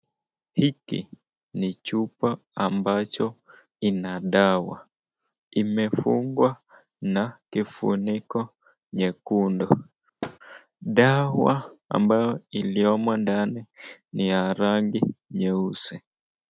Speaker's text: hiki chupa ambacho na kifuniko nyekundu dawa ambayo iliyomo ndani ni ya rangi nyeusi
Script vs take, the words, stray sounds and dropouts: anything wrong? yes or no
yes